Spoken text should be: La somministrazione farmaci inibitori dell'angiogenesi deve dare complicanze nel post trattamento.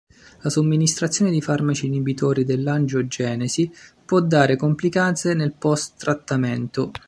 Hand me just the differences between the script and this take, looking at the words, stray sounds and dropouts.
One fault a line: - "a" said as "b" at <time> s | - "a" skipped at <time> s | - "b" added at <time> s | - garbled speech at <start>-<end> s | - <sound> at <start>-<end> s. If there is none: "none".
- "di" added at 1.3 s
- "deve" said as "può" at 4.0 s